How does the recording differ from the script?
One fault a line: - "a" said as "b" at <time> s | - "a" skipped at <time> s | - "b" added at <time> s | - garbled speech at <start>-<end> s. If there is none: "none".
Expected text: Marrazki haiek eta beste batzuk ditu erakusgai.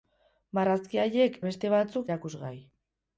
- "eta" skipped at 1.4 s
- "ditu" skipped at 2.1 s